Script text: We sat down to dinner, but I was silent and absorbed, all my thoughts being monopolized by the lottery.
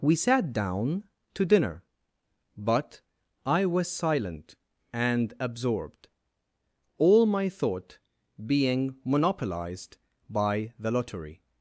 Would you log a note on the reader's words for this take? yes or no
yes